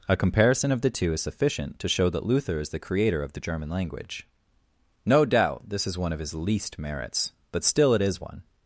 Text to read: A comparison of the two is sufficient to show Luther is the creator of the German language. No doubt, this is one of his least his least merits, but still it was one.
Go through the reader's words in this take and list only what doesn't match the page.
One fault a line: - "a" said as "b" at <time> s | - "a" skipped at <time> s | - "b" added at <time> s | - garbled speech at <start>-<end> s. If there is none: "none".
- "that" added at 2.1 s
- "his least" skipped at 6.8 s
- "was" said as "is" at 8.0 s